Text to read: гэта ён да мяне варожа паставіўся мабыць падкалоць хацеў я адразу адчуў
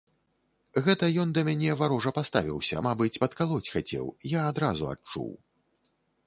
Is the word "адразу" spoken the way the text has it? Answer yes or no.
yes